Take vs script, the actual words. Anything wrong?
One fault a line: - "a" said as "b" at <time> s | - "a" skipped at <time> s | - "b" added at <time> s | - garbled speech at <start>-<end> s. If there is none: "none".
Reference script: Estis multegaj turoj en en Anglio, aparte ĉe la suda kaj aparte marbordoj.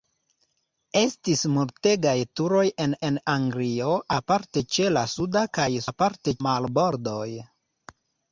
none